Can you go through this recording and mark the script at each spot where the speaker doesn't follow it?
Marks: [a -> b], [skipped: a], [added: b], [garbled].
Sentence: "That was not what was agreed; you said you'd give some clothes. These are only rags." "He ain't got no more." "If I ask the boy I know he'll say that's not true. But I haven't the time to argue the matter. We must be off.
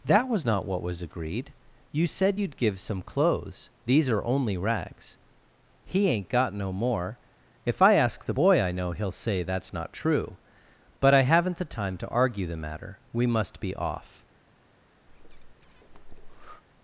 "That was not what was agreed; you said you'd give some clothes. These are only rags." "He ain't got no more." "If I ask the boy I know he'll say that's not true. But I haven't the time to argue the matter. We must be off.